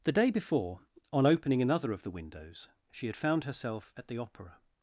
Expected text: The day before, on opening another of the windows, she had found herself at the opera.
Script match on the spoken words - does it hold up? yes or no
yes